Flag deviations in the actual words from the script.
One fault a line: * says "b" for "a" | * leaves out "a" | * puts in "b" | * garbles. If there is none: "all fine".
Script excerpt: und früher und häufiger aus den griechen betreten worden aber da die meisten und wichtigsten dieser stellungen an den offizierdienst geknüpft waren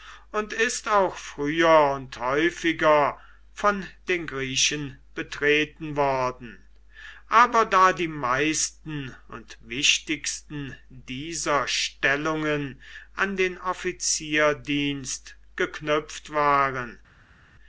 * puts in "ist auch"
* says "von" for "aus"